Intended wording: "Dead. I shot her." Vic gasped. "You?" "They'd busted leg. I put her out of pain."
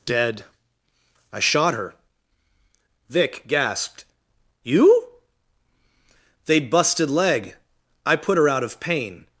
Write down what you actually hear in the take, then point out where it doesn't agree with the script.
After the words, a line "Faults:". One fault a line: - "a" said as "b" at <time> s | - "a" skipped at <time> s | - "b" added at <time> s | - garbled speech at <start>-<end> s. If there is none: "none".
"Dead. I shot her." Vic gasped. "You?" "They'd busted leg. I put her out of pain."
Faults:
none